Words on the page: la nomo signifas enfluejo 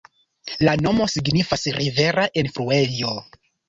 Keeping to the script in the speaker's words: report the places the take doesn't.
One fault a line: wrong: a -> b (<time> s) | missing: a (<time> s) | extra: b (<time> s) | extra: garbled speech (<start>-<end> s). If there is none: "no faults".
extra: rivera (1.8 s)